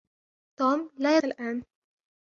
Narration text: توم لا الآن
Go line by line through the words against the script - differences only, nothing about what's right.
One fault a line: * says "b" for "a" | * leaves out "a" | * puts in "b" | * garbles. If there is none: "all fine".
all fine